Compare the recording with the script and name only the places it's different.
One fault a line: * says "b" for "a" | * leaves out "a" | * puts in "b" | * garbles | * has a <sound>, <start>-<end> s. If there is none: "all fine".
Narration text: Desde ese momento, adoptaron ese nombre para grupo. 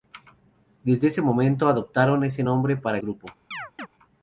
* has a chirp, 3.5-3.9 s